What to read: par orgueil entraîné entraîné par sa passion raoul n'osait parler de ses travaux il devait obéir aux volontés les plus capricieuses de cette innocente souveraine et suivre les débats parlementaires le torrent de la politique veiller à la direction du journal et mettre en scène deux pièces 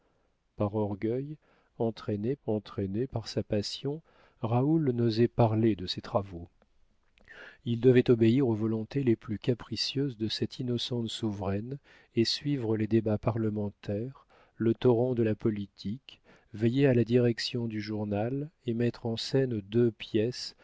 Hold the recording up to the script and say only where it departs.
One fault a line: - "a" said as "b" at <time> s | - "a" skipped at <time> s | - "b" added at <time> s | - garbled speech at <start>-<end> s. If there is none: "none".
none